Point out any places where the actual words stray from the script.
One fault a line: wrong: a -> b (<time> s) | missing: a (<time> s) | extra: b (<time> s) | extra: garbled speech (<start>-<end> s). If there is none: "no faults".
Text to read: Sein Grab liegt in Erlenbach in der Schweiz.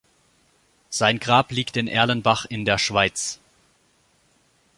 no faults